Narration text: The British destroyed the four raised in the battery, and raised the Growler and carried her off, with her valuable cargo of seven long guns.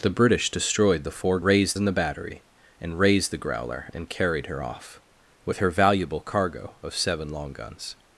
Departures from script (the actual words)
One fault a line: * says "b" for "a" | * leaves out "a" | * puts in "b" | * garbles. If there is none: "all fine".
all fine